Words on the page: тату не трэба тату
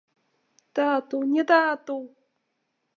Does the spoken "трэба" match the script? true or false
false